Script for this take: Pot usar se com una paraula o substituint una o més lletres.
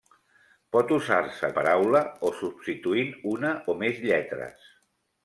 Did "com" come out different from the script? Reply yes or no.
yes